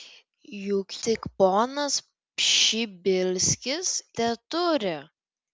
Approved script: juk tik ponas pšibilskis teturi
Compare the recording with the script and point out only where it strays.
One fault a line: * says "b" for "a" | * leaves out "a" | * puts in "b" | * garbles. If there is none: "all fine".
all fine